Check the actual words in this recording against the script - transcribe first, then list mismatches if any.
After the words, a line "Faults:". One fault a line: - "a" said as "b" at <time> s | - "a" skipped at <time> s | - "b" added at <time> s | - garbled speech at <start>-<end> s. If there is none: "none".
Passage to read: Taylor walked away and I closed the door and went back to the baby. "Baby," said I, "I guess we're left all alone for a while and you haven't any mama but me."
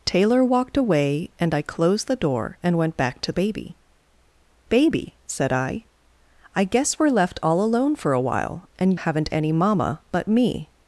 Taylor walked away and I closed the door and went back to baby. "Baby," said I, "I guess we're left all alone for a while and haven't any mama but me."
Faults:
- "the" skipped at 3.3 s
- "you" skipped at 9.0 s